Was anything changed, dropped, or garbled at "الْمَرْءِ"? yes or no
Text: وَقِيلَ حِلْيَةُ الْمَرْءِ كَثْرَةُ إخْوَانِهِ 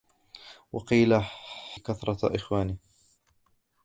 yes